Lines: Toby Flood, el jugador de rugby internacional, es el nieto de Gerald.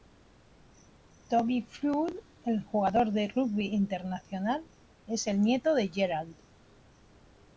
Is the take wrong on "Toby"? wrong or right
right